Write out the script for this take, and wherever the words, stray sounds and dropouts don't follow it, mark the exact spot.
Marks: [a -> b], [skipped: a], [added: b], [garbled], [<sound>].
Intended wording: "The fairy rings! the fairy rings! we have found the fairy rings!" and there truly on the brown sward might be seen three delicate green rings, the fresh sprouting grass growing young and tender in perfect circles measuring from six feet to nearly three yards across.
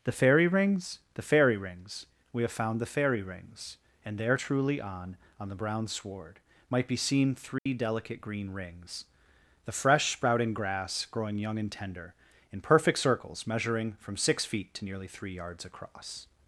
"The fairy rings! the fairy rings! we have found the fairy rings!" and there truly on [added: on] the brown sward might be seen three [dropout] delicate green rings, the fresh sprouting grass growing young and tender in perfect circles measuring from six feet to nearly three yards across.